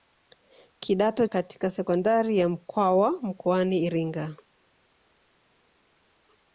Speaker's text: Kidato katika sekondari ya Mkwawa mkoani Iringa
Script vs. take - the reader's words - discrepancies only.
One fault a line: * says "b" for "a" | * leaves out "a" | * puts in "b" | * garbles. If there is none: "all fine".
all fine